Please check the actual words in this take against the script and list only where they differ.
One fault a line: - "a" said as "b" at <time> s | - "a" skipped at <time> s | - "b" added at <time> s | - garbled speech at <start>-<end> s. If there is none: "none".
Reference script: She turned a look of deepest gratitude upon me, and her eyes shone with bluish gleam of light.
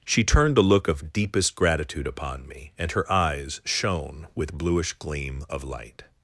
none